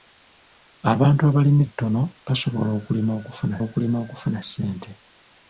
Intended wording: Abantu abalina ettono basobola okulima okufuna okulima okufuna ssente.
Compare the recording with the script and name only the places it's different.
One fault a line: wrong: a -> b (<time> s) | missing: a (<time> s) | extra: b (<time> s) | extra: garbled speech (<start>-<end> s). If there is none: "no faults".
no faults